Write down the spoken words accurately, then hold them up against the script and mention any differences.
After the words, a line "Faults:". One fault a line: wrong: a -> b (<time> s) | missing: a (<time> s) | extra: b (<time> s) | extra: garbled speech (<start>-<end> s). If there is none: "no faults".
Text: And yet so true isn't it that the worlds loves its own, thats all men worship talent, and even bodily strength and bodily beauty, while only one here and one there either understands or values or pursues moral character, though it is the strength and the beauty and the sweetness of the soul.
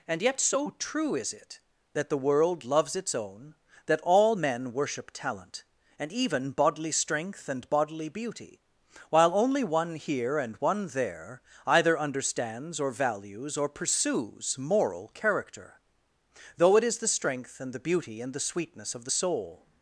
And yet so true is it that the world loves its own, that all men worship talent, and even bodily strength and bodily beauty, while only one here and one there either understands or values or pursues moral character, though it is the strength and the beauty and the sweetness of the soul.
Faults:
wrong: isn't -> is (1.1 s)
wrong: worlds -> world (2.2 s)
wrong: thats -> that (3.9 s)